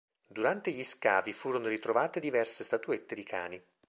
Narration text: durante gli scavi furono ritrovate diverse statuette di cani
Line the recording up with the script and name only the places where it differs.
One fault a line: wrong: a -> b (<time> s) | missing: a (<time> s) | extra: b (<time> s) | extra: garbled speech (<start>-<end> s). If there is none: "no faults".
no faults